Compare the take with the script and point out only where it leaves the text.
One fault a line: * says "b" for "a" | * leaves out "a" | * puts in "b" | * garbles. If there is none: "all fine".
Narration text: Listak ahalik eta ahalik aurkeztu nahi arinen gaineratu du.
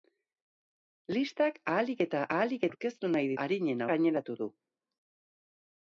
all fine